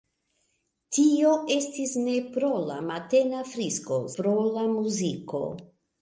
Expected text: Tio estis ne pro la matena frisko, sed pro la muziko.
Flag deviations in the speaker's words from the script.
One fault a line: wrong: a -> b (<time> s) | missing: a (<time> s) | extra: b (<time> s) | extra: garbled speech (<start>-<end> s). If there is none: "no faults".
missing: sed (4.0 s)